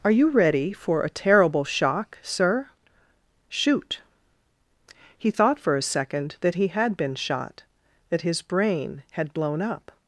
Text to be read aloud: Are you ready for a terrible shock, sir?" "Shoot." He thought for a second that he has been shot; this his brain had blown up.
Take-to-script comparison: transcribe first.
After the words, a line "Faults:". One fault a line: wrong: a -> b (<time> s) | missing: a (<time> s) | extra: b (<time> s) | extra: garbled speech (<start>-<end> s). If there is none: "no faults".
Are you ready for a terrible shock, sir?" "Shoot." He thought for a second that he had been shot; that his brain had blown up.
Faults:
wrong: has -> had (6.7 s)
wrong: this -> that (8.1 s)